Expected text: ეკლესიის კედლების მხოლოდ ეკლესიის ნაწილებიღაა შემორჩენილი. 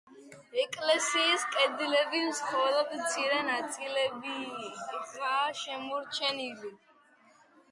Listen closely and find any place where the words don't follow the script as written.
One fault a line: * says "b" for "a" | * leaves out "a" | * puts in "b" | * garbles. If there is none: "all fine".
* says "მცირე" for "ეკლესიის"